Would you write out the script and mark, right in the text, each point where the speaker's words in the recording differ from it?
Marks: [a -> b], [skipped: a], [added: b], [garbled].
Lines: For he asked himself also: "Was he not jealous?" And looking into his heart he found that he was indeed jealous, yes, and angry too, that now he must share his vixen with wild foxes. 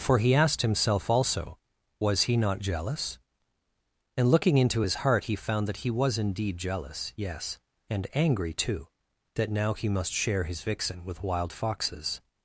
For he asked himself also: "Was he not jealous?" And looking into his heart he found that he was indeed jealous, yes, and angry too, that now he must share his vixen with wild foxes.